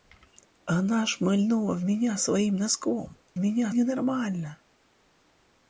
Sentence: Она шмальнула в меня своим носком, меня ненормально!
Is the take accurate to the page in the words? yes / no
yes